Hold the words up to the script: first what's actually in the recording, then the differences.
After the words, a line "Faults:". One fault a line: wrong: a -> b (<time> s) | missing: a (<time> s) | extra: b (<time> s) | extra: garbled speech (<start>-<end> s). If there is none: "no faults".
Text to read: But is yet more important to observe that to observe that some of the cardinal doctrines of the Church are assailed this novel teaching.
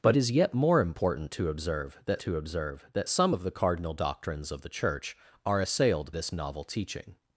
But is yet more important to observe that to observe that some of the cardinal doctrines of the Church are assailed this novel teaching.
Faults:
no faults